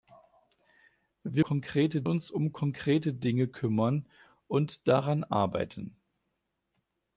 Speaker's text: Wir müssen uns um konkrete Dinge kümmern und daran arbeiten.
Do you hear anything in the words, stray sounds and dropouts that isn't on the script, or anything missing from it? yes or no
yes